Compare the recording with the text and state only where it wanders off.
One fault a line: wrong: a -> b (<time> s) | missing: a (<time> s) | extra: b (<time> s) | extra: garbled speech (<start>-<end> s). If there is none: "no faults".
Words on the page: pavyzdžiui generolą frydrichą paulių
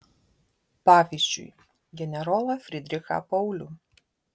no faults